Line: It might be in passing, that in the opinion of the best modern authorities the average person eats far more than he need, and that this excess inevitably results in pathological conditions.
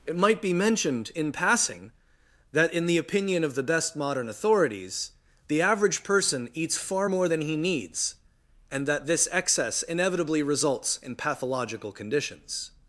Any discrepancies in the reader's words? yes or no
yes